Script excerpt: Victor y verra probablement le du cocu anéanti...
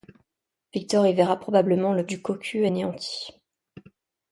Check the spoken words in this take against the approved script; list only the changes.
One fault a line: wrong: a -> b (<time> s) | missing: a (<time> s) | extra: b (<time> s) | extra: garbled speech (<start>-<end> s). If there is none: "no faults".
no faults